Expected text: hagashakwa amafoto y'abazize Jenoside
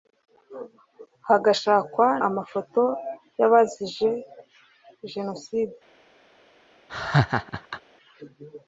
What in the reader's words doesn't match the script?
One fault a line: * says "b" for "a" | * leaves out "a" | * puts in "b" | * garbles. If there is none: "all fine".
all fine